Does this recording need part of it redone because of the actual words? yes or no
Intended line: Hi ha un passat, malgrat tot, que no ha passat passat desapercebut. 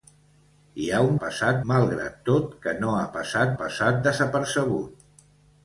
no